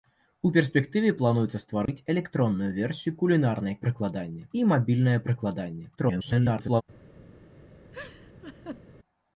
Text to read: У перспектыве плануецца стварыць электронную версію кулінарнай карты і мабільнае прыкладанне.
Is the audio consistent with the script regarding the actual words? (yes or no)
no